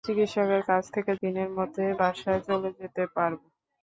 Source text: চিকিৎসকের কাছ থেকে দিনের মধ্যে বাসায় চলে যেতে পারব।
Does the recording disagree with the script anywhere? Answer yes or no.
no